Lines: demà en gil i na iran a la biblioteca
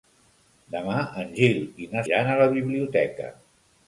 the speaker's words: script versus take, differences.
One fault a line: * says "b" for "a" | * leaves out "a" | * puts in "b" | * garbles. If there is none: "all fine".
all fine